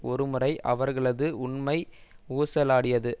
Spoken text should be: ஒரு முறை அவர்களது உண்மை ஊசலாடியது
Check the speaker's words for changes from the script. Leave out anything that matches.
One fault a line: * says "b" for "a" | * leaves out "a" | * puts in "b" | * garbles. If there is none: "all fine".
all fine